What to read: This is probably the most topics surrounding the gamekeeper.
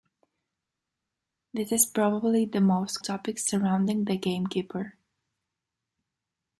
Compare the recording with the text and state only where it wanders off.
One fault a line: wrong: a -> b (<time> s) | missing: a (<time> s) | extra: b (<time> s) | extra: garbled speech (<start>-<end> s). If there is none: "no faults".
no faults